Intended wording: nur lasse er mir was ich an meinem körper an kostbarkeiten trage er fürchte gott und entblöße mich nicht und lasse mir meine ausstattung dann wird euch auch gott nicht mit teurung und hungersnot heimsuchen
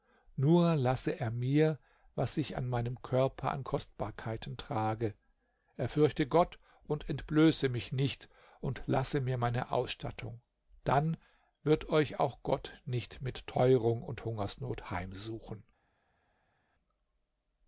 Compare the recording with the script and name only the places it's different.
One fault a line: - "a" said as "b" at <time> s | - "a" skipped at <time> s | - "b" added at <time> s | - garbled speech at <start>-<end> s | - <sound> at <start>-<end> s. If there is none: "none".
none